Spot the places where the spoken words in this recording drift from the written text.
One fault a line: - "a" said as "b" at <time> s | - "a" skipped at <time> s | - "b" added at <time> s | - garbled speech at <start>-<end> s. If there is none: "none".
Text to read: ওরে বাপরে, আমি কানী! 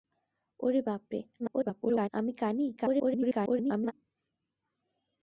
- garbled speech at 1.4-2.1 s
- garbled speech at 2.8-3.9 s